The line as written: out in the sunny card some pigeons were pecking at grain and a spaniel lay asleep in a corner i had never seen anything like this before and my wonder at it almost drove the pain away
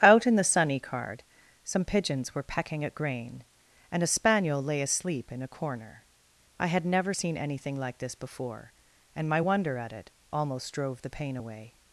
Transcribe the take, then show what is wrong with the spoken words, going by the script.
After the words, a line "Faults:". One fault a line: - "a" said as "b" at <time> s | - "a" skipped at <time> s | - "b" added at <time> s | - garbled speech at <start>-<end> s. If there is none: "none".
out in the sunny card some pigeons were pecking at grain and a spaniel lay asleep in a corner i had never seen anything like this before and my wonder at it almost drove the pain away
Faults:
none